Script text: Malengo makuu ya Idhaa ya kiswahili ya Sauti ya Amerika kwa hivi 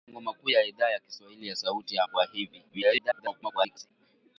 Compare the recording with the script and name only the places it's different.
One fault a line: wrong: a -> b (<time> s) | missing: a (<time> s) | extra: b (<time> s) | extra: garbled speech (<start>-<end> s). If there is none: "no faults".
missing: Amerika (2.0 s)
extra: garbled speech (2.7-3.9 s)